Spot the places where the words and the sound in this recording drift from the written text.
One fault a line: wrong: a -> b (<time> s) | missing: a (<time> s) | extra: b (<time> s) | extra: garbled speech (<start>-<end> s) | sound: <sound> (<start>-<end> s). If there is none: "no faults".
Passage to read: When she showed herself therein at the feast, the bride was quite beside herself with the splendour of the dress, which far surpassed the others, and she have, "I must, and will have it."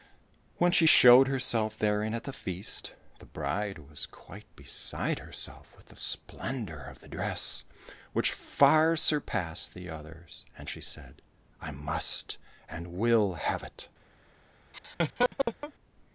wrong: have -> said (10.8 s)
sound: laugh (14.7-15.7 s)